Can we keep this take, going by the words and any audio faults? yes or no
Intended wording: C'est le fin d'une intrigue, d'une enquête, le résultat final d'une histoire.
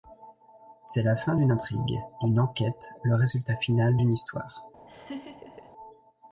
no